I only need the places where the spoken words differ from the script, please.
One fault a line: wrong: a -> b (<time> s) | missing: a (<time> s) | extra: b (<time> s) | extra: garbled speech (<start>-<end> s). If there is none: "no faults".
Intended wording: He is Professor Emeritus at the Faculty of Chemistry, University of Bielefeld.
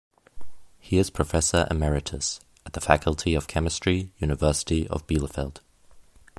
no faults